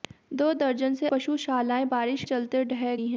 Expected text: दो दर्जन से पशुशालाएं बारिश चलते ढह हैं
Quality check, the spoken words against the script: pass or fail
pass